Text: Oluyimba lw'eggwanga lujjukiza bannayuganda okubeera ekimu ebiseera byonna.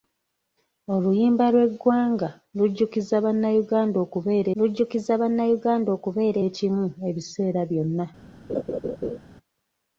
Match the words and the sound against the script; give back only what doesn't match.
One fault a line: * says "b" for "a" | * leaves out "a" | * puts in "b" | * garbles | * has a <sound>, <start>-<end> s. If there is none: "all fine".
* puts in "lujjukiza bannayuganda okubeera"
* has a laugh, 8.5-9.2 s